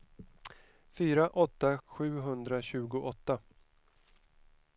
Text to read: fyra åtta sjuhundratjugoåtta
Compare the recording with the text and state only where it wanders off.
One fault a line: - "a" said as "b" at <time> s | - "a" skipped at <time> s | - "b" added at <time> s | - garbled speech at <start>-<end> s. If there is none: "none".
none